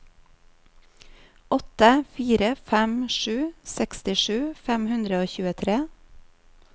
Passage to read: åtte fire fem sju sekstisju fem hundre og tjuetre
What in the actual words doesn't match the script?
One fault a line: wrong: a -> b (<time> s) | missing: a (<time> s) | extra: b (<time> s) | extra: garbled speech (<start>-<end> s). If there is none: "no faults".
no faults